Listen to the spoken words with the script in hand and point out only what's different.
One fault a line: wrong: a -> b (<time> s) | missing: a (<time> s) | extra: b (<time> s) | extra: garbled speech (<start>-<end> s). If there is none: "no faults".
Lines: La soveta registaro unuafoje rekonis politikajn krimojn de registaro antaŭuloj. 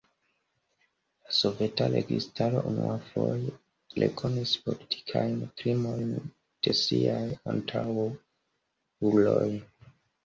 wrong: registaro -> siaj (6.8 s)